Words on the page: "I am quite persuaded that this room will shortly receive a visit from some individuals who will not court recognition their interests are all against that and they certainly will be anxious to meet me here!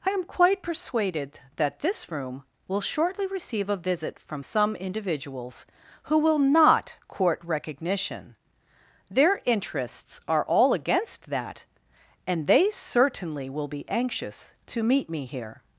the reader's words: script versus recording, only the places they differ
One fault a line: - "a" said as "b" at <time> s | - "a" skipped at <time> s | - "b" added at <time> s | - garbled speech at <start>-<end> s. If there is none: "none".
none